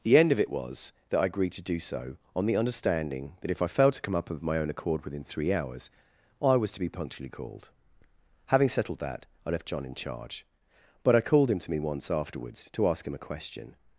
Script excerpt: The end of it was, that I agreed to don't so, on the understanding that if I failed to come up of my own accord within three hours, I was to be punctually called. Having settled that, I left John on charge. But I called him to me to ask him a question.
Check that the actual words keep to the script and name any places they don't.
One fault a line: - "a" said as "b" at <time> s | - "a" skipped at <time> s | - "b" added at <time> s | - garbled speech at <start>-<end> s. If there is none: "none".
- "don't" said as "do" at 1.6 s
- "on" said as "in" at 9.8 s
- "once afterwards" added at 11.8 s